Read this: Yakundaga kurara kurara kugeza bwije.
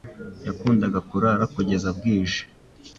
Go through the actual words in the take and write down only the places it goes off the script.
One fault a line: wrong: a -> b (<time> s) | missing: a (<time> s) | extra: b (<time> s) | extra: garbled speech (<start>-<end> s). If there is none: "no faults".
missing: kurara (1.4 s)